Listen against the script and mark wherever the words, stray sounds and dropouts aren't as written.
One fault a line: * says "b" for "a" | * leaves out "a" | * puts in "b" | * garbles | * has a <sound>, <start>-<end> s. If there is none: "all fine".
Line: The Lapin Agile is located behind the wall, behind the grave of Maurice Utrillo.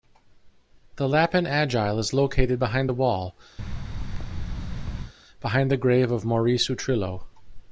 * has a thud, 3.6-5.1 s